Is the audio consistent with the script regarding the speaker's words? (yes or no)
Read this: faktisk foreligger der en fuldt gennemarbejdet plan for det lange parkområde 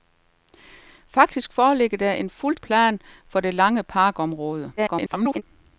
no